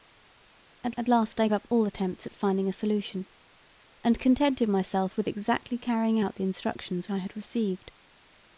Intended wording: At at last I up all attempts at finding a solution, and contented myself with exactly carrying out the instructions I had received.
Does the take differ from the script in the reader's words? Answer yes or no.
no